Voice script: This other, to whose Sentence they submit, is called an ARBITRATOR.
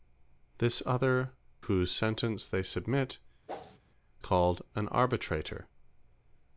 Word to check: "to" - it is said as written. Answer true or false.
false